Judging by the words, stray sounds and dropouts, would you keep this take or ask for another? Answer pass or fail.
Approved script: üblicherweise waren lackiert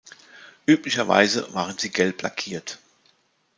fail